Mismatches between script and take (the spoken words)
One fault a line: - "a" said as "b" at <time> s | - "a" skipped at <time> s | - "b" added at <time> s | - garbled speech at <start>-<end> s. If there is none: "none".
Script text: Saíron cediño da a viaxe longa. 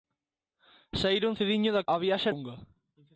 none